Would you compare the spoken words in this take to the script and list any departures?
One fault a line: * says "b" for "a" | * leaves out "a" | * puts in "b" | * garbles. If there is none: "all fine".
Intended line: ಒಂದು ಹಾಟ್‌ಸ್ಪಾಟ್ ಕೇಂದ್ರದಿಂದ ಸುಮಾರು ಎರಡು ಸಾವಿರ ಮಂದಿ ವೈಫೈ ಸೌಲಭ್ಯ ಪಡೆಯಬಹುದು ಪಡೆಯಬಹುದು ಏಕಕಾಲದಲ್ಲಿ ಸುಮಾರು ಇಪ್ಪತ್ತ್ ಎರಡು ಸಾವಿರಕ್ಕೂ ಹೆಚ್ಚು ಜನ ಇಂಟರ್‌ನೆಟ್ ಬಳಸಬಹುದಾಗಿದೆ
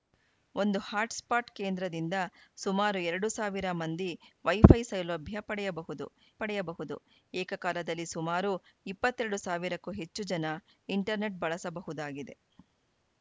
all fine